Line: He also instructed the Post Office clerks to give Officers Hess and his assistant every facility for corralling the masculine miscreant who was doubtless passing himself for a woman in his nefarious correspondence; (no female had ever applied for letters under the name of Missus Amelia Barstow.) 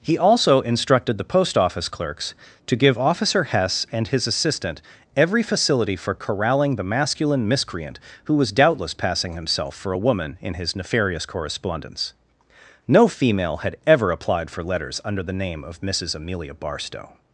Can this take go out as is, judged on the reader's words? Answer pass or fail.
fail